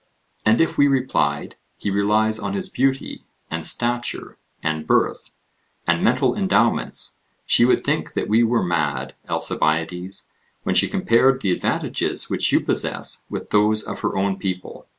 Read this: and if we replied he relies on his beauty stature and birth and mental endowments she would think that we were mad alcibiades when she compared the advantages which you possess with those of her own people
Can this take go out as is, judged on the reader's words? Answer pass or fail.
fail